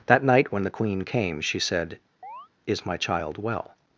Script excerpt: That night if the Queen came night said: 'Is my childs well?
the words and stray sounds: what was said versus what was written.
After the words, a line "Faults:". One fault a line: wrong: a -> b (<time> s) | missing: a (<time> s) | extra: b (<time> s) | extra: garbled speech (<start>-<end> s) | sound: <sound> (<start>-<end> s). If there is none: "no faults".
That night when the Queen came she said: 'Is my child well?
Faults:
wrong: if -> when (0.5 s)
wrong: night -> she (1.4 s)
sound: chirp (2.2-2.5 s)
wrong: childs -> child (3.0 s)